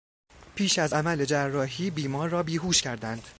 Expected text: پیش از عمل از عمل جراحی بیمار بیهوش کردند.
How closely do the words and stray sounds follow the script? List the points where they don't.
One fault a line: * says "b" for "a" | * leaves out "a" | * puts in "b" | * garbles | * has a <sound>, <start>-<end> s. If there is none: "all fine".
* leaves out "از عمل"
* puts in "را"